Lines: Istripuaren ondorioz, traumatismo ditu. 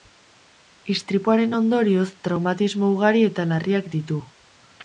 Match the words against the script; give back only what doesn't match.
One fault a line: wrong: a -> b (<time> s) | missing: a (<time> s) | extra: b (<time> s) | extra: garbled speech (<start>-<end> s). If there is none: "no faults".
extra: ugari eta larriak (3.0 s)